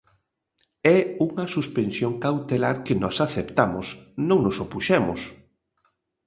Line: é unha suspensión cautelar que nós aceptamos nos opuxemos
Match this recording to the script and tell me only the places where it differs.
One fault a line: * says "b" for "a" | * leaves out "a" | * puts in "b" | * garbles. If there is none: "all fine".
* puts in "non"